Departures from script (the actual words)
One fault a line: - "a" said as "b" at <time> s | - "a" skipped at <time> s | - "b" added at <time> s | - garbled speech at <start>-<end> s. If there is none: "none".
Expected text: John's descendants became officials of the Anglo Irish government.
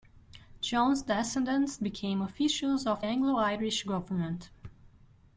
- "the" skipped at 3.0 s